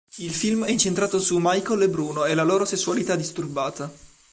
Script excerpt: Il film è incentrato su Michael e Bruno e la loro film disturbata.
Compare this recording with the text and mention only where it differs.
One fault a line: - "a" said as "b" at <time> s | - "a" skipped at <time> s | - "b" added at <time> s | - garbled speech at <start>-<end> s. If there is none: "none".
- "film" said as "sessualità" at 2.7 s